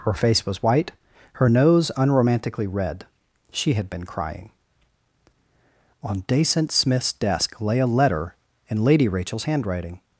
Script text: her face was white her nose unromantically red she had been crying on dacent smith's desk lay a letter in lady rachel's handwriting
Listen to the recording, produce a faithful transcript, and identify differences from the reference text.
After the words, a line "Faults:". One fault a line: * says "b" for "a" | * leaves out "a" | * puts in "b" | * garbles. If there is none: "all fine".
her face was white her nose unromantically red she had been crying on dacent smith's desk lay a letter in lady rachel's handwriting
Faults:
all fine